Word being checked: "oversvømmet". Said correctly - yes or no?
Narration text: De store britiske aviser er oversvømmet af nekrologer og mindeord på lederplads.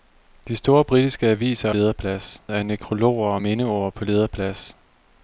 no